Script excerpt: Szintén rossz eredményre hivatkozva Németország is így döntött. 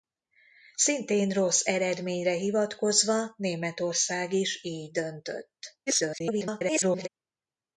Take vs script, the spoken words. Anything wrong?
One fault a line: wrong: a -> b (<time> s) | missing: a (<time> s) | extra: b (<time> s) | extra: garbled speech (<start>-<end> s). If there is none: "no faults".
extra: garbled speech (5.9-7.1 s)